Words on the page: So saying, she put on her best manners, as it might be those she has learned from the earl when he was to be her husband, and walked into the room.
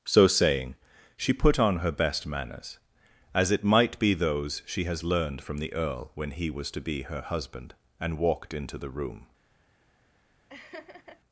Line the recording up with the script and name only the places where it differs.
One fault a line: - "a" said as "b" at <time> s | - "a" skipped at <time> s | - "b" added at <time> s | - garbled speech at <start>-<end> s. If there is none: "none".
none